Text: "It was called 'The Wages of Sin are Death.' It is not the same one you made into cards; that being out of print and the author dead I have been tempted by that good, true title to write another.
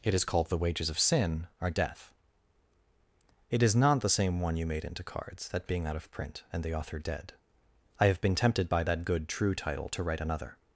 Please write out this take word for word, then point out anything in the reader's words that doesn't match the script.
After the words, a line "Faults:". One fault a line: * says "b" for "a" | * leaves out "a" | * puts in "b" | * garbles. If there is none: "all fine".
"It is called 'The Wages of Sin are Death.' It is not the same one you made into cards; that being out of print and the author dead I have been tempted by that good, true title to write another.
Faults:
* says "is" for "was"